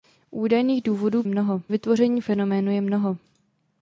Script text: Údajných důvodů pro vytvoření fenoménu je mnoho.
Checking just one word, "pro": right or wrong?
wrong